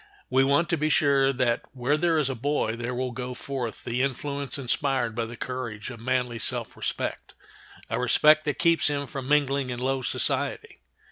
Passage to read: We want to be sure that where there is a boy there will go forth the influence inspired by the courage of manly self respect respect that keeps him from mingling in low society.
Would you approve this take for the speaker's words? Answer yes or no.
no